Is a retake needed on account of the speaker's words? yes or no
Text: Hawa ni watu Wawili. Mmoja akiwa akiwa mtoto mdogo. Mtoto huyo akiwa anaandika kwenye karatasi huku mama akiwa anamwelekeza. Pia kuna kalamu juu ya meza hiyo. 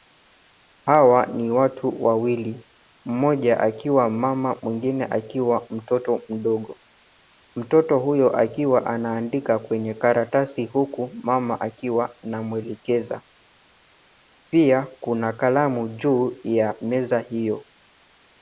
yes